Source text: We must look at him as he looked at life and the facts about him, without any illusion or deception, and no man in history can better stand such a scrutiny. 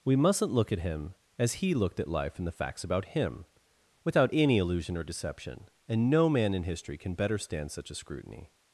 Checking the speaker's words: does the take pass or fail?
fail